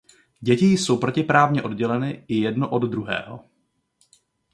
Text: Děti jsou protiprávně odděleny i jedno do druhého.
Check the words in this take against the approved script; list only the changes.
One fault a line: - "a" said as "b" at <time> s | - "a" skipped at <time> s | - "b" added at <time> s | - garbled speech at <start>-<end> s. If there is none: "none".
- "do" said as "od" at 2.7 s